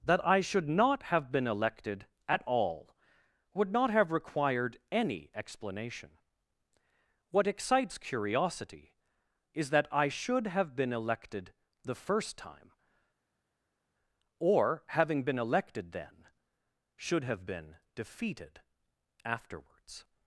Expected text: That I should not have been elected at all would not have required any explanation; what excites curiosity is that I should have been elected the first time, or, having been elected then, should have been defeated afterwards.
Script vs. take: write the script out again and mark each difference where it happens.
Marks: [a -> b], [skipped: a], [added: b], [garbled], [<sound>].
That I should not have been elected at all would not have required any explanation; what excites curiosity is that I should have been elected the first time, or, having been elected then, should have been defeated afterwards.